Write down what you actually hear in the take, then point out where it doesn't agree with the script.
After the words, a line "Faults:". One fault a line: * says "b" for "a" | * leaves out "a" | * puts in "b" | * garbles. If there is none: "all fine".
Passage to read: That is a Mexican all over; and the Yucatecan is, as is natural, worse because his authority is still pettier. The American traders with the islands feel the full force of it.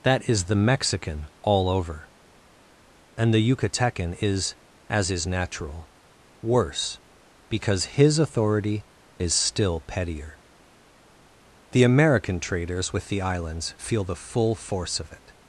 That is the Mexican all over; and the Yucatecan is, as is natural, worse because his authority is still pettier. The American traders with the islands feel the full force of it.
Faults:
* says "the" for "a"